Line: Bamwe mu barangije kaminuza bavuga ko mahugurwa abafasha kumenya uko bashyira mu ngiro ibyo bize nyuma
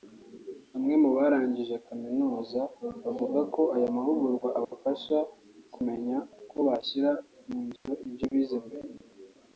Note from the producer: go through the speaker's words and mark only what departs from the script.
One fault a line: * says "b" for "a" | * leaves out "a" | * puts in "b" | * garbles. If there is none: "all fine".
* puts in "aya"
* says "mbere" for "nyuma"